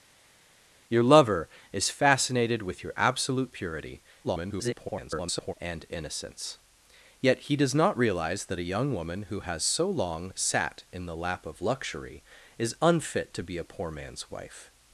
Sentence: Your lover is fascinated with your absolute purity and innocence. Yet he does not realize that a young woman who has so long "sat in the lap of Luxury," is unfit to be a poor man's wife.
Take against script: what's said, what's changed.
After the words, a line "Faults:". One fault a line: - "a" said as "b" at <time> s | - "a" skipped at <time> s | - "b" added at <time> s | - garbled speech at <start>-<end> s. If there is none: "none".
Your lover is fascinated with your absolute purity [garbled] and innocence. Yet he does not realize that a young woman who has so long "sat in the lap of Luxury," is unfit to be a poor man's wife.
Faults:
- garbled speech at 4.2-5.5 s